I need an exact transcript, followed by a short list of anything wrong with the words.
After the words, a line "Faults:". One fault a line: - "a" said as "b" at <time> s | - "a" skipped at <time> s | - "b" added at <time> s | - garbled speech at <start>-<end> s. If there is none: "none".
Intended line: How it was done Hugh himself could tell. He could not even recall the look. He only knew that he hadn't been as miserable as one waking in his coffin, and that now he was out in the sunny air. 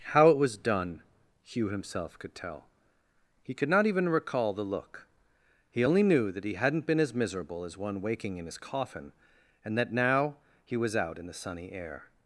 How it was done Hugh himself could tell. He could not even recall the look. He only knew that he hadn't been as miserable as one waking in his coffin, and that now he was out in the sunny air.
Faults:
none